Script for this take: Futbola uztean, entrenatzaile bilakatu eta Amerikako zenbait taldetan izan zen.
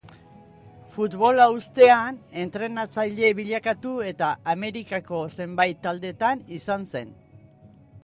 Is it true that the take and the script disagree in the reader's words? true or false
false